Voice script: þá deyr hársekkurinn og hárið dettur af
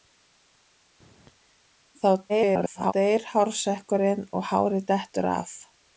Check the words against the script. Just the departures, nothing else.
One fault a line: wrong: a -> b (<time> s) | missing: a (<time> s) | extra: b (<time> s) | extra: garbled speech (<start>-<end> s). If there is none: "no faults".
extra: garbled speech (2.3-2.9 s)